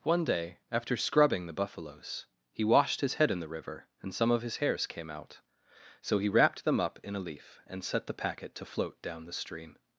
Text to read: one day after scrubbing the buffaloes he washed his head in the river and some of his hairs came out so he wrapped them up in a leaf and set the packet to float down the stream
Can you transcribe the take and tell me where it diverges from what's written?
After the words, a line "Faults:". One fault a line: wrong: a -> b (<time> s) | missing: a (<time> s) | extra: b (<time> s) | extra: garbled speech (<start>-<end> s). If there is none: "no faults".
one day after scrubbing the buffaloes he washed his head in the river and some of his hairs came out so he wrapped them up in a leaf and set the packet to float down the stream
Faults:
no faults